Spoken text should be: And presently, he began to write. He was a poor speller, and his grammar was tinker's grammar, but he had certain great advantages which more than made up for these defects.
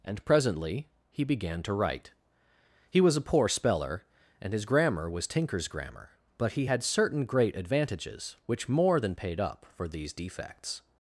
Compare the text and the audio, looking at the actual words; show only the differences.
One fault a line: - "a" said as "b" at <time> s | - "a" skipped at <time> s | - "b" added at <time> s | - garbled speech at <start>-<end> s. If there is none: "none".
- "made" said as "paid" at 9.1 s